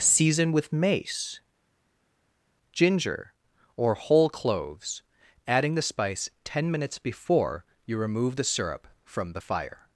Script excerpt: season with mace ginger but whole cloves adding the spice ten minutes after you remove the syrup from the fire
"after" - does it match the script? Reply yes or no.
no